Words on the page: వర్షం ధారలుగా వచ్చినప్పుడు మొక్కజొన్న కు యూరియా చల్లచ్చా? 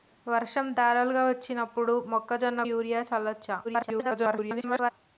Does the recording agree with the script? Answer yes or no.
no